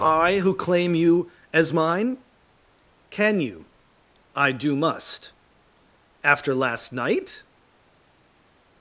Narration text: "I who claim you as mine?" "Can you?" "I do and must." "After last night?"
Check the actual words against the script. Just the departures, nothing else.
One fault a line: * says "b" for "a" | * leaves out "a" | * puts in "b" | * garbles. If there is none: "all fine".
* leaves out "and"